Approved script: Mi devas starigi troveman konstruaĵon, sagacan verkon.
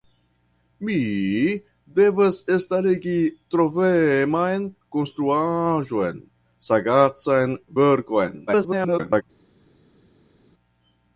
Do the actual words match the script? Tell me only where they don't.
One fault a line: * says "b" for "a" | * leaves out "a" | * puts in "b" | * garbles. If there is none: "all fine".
* garbles